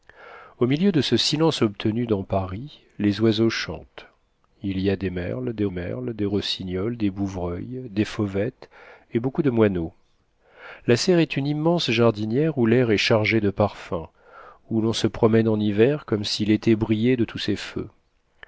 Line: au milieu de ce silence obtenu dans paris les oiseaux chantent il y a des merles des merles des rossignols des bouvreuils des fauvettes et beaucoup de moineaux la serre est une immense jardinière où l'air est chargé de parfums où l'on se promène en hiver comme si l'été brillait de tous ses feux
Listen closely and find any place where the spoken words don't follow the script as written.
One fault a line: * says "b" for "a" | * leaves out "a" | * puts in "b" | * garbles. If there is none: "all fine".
all fine